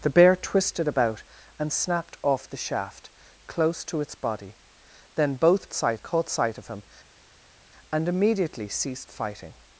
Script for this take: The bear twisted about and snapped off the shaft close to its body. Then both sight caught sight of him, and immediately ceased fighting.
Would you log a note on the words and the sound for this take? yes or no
no